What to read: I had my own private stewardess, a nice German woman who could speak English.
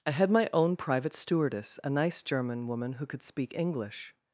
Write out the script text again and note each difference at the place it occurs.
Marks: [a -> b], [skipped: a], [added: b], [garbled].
I had my own private stewardess, a nice German woman who could speak English.